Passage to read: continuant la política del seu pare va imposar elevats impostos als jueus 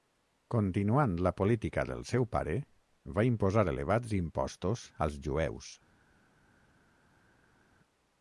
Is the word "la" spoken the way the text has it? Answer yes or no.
yes